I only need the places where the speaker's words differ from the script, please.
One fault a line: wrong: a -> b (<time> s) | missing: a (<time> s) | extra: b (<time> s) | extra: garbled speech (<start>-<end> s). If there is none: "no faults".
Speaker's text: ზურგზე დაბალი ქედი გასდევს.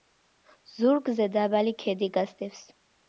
no faults